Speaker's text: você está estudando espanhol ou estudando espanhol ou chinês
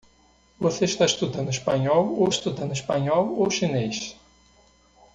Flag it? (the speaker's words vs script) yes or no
no